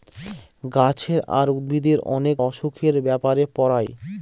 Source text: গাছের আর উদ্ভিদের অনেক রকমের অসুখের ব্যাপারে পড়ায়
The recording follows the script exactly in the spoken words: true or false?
false